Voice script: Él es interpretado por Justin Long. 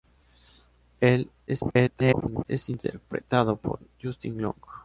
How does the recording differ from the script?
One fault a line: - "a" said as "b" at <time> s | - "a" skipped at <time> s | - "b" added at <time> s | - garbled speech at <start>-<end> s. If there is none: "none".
- garbled speech at 1.5-2.5 s